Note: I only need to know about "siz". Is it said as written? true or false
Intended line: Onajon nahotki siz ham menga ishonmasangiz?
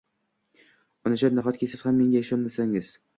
true